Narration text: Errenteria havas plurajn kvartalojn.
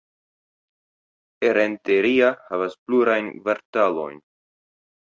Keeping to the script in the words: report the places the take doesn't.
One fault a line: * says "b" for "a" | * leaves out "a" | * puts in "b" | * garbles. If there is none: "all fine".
all fine